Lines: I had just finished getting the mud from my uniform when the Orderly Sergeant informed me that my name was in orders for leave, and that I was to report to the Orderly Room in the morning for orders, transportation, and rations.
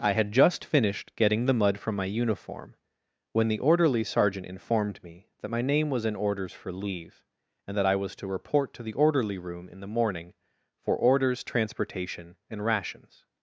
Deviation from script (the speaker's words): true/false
false